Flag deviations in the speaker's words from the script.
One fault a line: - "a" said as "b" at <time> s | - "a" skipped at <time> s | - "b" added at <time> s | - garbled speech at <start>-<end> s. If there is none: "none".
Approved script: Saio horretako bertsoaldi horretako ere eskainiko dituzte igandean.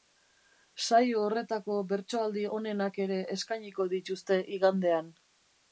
- "horretako" said as "onenak" at 2.6 s